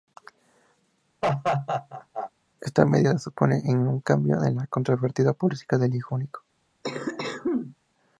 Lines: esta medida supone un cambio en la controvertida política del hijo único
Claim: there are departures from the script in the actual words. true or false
false